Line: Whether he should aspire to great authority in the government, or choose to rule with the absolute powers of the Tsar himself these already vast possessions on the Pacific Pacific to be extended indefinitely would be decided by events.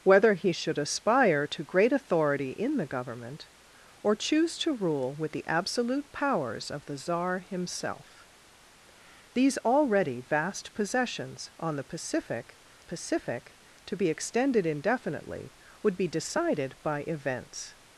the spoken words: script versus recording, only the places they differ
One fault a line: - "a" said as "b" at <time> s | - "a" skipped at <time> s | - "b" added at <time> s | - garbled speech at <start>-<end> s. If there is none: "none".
none